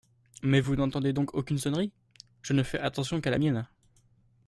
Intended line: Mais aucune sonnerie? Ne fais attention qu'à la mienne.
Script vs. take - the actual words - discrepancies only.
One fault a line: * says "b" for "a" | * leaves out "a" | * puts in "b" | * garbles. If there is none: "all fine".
* puts in "vous n'entendez donc"
* puts in "Je"